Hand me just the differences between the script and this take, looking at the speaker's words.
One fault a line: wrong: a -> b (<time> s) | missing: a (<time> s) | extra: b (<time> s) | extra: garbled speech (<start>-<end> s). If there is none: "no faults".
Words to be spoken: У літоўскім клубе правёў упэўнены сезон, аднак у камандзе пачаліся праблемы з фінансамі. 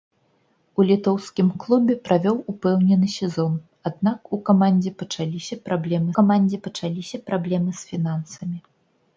extra: камандзе пачаліся праблемы (6.2 s)